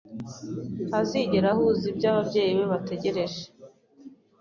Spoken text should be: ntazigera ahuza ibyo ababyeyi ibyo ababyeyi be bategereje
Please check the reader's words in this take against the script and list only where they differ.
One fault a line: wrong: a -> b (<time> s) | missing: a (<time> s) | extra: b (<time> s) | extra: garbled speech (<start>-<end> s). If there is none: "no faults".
missing: ibyo ababyeyi (2.5 s)